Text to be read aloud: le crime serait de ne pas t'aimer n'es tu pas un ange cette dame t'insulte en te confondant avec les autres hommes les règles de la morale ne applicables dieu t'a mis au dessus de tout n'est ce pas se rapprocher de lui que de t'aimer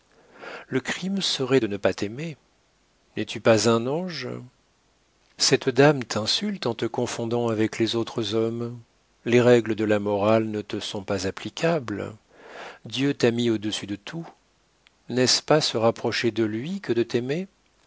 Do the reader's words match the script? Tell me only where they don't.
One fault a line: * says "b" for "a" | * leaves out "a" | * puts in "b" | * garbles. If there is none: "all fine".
* puts in "te sont pas"